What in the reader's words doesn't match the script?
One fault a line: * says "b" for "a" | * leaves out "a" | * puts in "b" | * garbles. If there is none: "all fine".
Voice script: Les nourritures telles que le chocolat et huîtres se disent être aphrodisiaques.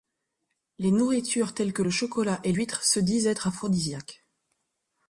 all fine